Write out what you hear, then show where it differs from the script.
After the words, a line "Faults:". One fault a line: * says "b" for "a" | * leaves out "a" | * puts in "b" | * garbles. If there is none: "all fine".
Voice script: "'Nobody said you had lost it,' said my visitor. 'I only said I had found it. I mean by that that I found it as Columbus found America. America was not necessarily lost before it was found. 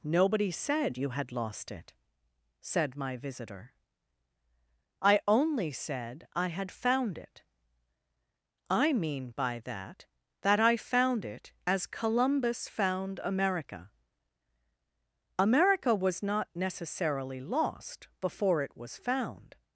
"'Nobody said you had lost it,' said my visitor. 'I only said I had found it. I mean by that that I found it as Columbus found America. America was not necessarily lost before it was found.
Faults:
all fine